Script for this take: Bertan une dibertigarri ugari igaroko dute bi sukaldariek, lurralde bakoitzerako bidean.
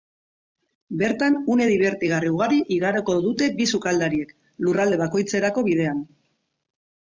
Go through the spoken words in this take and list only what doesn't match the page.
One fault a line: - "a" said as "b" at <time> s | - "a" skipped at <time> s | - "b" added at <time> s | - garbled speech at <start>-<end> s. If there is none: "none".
none